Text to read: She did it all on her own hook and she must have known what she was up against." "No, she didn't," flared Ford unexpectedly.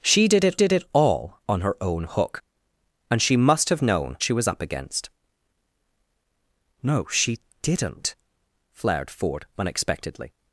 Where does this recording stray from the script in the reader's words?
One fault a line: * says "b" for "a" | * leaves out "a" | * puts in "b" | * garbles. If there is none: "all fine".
* puts in "did it"
* leaves out "what"